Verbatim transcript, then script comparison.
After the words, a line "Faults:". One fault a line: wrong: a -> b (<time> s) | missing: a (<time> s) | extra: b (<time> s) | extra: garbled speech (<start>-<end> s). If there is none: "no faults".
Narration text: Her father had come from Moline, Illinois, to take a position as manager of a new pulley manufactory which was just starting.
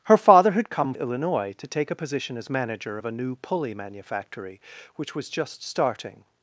Her father had come Illinois, to take a position as manager of a new pulley manufactory which was just starting.
Faults:
missing: from Moline (0.9 s)